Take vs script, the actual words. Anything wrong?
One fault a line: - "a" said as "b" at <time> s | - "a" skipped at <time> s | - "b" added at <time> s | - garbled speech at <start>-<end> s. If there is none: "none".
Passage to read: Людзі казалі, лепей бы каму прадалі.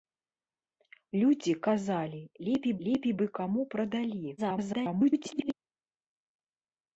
- "лепей" added at 2.9 s
- garbled speech at 4.4-5.5 s